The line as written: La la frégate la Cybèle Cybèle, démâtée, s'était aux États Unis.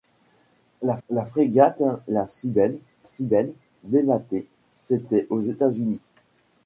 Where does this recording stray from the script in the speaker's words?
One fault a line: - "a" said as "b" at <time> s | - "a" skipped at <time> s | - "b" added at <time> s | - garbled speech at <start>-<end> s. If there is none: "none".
none